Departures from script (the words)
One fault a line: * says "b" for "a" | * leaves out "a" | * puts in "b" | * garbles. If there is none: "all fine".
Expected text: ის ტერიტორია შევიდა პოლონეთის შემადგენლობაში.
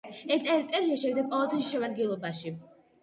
* says "ეს" for "ის"